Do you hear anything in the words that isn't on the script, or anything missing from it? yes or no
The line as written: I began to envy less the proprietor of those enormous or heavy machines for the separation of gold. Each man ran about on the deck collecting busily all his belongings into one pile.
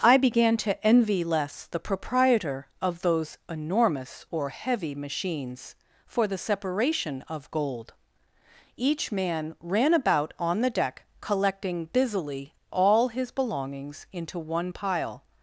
no